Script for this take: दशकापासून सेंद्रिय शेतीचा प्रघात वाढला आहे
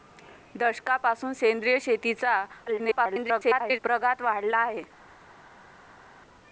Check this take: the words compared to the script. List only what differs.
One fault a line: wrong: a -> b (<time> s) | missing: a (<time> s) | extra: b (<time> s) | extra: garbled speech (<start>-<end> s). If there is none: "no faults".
extra: garbled speech (2.7-3.8 s)